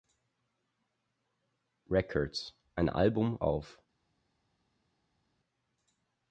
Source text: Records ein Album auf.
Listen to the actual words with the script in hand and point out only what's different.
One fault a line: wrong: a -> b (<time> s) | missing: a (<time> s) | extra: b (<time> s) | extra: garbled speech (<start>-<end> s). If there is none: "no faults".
no faults